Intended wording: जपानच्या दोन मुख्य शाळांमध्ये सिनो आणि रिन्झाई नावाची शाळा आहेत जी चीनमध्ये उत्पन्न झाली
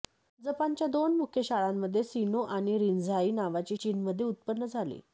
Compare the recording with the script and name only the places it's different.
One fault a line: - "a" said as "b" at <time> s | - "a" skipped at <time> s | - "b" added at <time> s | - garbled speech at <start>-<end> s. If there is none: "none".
- "शाळा आहेत जी" skipped at 3.8 s